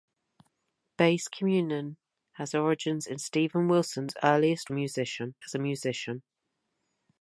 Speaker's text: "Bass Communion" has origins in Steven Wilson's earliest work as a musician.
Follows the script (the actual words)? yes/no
no